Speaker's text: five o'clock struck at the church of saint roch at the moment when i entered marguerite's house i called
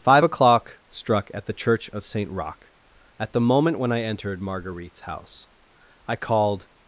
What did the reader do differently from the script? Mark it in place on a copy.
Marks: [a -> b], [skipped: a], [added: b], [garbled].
five o'clock struck at the church of saint roch at the moment when i entered marguerite's house i called